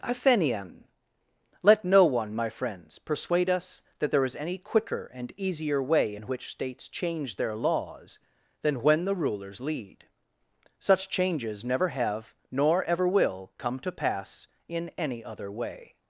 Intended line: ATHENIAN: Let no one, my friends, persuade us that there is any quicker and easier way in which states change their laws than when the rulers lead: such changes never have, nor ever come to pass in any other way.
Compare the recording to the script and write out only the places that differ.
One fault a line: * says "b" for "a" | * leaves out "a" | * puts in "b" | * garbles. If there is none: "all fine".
* puts in "will"